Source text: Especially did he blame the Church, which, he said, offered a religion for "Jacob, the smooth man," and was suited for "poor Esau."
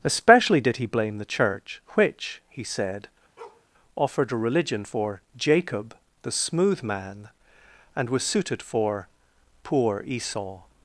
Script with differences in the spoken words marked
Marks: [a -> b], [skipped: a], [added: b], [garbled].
Especially did he blame the Church, which, he said, offered a religion for "Jacob, the smooth man," and was suited for "poor Esau."